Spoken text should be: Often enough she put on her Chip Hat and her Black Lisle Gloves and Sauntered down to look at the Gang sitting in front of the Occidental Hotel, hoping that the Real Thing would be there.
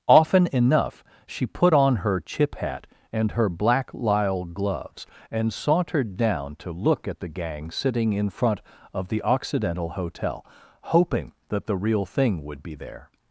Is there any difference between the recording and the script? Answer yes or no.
no